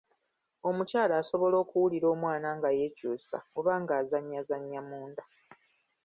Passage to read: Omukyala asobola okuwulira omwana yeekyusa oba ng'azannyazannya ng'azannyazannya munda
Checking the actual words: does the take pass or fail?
fail